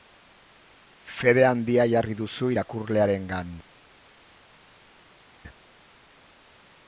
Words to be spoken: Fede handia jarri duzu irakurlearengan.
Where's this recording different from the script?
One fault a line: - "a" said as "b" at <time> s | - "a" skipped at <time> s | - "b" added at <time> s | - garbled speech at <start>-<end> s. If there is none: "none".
none